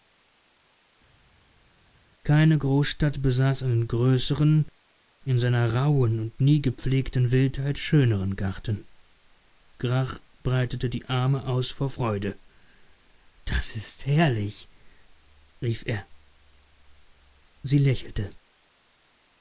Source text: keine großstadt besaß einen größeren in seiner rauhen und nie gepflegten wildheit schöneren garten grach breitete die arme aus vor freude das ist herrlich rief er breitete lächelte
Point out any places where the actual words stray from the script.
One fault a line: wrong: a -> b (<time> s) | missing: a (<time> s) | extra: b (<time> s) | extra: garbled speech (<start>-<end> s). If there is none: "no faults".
wrong: breitete -> sie (17.6 s)